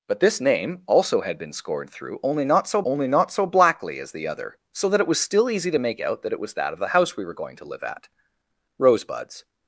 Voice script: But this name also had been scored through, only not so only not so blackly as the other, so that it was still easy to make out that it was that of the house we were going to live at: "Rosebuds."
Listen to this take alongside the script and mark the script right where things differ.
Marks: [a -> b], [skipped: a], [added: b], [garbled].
But this name also had been scored through, only not so only not so blackly as the other, so that it was still easy to make out that it was that of the house we were going to live at: "Rosebuds."